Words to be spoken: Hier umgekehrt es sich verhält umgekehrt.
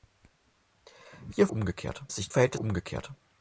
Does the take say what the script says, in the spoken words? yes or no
yes